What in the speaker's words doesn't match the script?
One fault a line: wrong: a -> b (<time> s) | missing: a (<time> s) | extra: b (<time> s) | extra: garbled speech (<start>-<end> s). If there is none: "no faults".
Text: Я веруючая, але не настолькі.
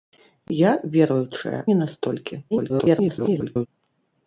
missing: але (1.6 s)
extra: garbled speech (2.5-3.7 s)